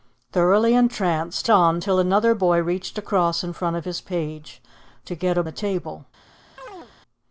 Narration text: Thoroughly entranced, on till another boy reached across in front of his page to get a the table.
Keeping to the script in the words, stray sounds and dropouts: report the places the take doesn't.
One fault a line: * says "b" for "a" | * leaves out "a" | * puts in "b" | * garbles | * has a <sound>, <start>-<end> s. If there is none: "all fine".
* has a chirp, 6.6-6.9 s